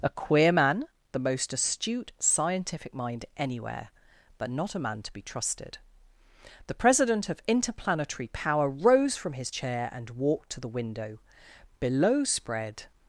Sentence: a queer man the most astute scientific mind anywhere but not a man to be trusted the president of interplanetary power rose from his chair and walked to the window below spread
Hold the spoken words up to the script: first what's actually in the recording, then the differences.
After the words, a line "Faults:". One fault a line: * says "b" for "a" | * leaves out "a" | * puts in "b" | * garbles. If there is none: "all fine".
a queer man the most astute scientific mind anywhere but not a man to be trusted the president of interplanetary power rose from his chair and walked to the window below spread
Faults:
all fine